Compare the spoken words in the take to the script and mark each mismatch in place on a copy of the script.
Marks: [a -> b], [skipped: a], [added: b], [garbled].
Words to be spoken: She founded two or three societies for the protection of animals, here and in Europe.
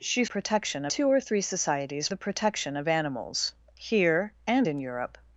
She [founded -> protection] two or three societies [skipped: for] the protection of animals, here and in Europe.